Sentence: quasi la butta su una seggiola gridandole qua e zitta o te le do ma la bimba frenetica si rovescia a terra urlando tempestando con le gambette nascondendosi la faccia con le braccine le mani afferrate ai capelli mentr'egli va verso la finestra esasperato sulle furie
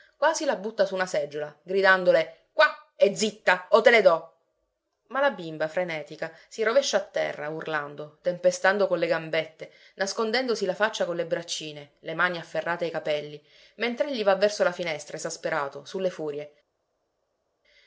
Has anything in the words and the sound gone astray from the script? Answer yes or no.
no